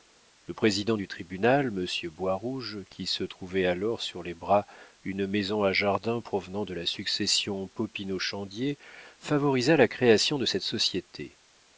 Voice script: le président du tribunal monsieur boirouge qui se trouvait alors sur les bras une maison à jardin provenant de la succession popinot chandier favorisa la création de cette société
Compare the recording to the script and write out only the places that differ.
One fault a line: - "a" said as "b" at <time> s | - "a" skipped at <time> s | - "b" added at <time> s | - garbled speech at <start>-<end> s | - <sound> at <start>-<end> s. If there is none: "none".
none